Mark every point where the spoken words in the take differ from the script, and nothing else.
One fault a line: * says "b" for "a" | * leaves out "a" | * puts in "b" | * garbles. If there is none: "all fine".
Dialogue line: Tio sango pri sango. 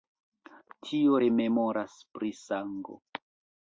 * says "rememoras" for "sango"